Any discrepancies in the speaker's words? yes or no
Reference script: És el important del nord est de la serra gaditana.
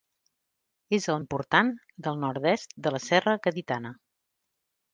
no